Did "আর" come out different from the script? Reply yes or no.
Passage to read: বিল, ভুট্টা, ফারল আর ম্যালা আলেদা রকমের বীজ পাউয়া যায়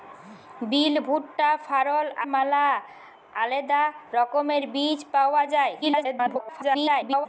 yes